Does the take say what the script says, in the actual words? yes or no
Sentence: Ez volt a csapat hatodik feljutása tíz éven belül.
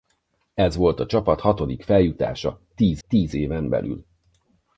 no